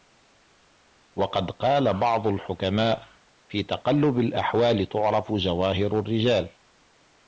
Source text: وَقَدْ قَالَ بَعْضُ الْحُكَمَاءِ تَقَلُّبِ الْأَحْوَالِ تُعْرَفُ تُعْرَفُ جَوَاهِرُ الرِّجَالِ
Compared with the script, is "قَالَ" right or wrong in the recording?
right